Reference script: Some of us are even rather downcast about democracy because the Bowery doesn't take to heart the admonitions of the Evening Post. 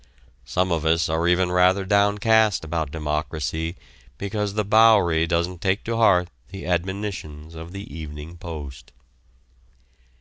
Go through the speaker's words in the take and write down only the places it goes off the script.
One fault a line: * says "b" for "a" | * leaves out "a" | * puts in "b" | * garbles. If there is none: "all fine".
all fine